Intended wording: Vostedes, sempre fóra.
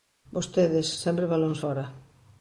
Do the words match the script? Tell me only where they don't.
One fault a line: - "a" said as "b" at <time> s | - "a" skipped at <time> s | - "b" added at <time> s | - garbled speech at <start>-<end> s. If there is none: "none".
- "balóns" added at 1.3 s